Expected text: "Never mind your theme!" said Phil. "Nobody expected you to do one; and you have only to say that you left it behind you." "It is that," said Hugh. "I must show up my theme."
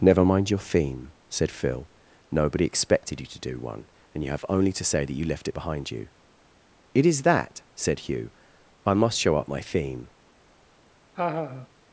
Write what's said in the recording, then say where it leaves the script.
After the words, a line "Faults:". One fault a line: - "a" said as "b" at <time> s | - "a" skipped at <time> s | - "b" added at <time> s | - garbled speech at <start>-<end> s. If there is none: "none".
"Never mind your theme!" said Phil. "Nobody expected you to do one; and you have only to say that you left it behind you." "It is that," said Hugh. "I must show up my theme."
Faults:
none